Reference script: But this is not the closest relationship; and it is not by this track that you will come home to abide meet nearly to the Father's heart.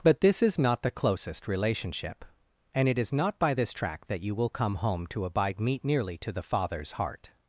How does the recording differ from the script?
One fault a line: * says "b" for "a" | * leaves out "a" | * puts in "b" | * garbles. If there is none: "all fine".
all fine